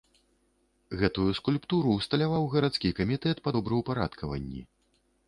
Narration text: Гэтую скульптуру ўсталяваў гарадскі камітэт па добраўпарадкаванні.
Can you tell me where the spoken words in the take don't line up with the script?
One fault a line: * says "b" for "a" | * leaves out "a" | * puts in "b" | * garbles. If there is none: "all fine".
all fine